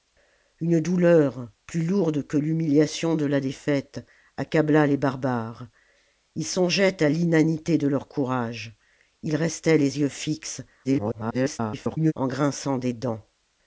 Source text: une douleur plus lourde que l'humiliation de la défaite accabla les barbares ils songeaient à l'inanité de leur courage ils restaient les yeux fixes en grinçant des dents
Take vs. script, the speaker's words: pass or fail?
fail